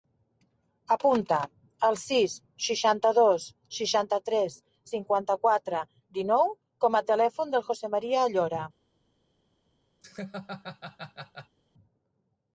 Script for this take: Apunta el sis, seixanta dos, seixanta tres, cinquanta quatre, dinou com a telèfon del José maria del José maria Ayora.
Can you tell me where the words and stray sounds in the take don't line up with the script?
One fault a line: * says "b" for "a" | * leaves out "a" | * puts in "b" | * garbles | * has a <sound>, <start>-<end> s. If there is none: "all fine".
* leaves out "del José maria"
* has a laugh, 10.0-11.6 s